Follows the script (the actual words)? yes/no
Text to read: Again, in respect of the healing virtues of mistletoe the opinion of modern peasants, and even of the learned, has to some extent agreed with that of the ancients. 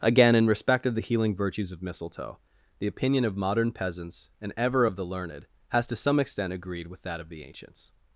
no